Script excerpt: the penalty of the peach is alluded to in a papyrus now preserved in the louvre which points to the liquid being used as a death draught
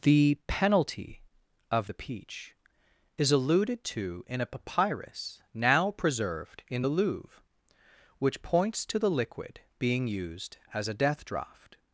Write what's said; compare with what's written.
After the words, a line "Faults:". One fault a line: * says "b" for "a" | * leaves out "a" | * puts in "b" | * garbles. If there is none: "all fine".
the penalty of the peach is alluded to in a papyrus now preserved in the louvre which points to the liquid being used as a death draught
Faults:
all fine